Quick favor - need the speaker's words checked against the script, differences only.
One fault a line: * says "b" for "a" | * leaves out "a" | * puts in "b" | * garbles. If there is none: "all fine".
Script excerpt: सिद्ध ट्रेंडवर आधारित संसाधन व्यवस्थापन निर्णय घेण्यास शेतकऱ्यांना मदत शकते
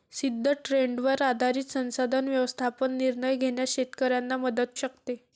all fine